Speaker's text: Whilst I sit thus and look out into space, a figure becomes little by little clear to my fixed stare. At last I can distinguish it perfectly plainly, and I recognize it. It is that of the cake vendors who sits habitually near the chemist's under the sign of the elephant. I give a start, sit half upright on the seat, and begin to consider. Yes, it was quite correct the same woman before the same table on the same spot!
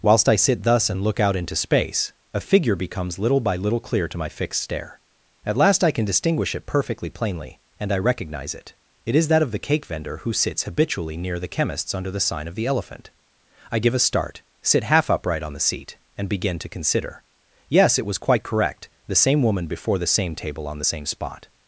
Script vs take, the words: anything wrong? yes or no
yes